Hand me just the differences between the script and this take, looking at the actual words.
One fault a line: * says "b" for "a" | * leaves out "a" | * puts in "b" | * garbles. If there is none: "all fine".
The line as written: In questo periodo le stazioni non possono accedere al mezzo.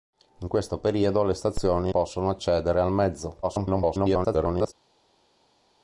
* leaves out "non"
* garbles